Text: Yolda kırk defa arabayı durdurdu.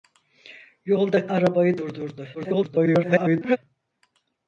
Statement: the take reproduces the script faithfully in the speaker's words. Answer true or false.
false